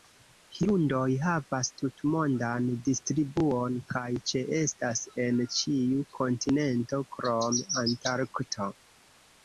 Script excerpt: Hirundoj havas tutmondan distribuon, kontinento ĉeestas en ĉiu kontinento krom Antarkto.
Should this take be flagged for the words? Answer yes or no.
yes